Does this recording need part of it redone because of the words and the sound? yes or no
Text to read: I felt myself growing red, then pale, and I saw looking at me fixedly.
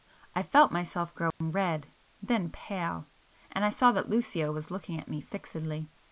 yes